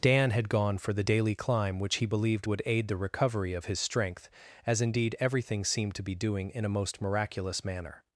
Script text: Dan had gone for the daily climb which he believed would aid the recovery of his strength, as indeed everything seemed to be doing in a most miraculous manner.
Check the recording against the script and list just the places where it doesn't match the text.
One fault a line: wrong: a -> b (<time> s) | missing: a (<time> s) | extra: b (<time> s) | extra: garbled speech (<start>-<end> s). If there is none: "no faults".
no faults